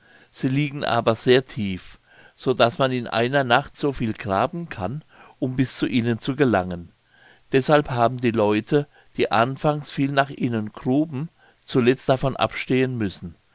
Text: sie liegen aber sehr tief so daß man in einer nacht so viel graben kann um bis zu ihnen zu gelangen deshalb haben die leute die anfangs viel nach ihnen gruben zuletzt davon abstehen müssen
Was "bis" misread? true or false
false